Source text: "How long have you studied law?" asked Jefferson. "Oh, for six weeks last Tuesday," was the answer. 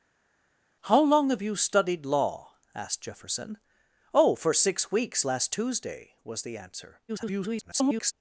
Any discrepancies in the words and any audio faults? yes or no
yes